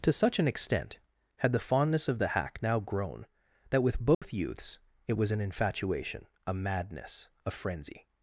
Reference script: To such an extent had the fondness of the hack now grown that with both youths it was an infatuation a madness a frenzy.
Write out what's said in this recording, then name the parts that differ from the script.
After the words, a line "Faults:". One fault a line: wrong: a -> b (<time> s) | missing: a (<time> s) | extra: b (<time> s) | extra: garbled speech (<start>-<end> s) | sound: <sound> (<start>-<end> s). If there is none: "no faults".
To such an extent had the fondness of the hack now grown that with both youths it was an infatuation a madness a frenzy.
Faults:
sound: dropout (4.1-4.2 s)